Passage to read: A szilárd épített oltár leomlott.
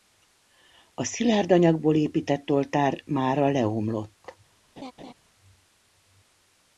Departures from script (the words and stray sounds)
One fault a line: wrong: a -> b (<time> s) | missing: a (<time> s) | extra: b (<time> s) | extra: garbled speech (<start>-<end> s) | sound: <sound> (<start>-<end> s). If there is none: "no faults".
extra: anyagból (1.5 s)
extra: mára (3.0 s)
sound: laugh (4.8-5.1 s)